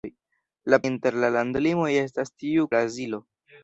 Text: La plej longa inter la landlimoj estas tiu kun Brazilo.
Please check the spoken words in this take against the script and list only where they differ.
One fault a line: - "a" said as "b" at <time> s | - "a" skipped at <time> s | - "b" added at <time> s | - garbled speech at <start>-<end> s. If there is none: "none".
- "plej longa" skipped at 0.8 s
- "kun" skipped at 2.7 s